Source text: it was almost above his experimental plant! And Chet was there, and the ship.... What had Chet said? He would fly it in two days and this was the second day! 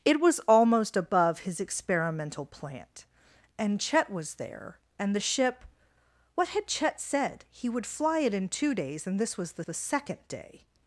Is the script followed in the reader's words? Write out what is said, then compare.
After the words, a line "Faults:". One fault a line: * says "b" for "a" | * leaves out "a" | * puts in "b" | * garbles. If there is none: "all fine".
it was almost above his experimental plant! And Chet was there, and the ship.... What had Chet said? He would fly it in two days and this was the the second day!
Faults:
* puts in "the"